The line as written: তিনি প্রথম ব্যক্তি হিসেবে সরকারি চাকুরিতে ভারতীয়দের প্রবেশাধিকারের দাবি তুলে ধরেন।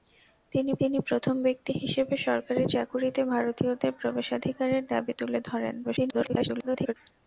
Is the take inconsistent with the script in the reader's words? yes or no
yes